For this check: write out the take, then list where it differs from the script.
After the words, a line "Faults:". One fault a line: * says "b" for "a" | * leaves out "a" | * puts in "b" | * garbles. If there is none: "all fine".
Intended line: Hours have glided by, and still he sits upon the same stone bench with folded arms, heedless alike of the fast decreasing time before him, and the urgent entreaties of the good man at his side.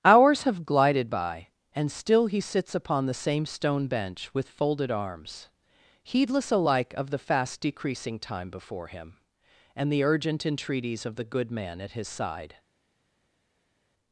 Hours have glided by, and still he sits upon the same stone bench with folded arms, heedless alike of the fast decreasing time before him, and the urgent entreaties of the good man at his side.
Faults:
all fine